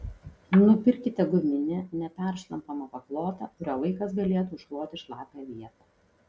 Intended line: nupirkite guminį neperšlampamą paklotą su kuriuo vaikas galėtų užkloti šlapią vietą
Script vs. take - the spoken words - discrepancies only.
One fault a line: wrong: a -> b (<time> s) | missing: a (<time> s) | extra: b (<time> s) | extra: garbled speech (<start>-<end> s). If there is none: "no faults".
missing: su (3.5 s)